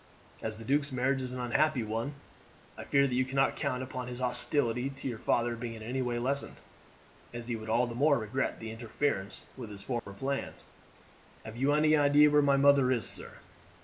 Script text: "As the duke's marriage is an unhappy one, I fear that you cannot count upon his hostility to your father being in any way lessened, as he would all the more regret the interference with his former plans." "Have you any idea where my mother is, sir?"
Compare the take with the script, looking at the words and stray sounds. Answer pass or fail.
fail